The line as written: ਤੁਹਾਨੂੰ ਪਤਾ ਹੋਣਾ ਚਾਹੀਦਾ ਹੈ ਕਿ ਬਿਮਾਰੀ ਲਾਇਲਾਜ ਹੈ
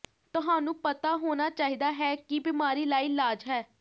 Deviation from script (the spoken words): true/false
false